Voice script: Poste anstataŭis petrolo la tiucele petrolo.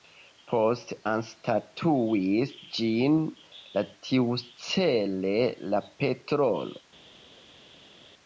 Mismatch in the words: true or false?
true